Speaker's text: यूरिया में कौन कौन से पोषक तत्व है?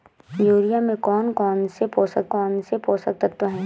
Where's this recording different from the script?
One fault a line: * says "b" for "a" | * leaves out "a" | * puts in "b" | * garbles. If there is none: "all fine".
* puts in "कौन से पोषक"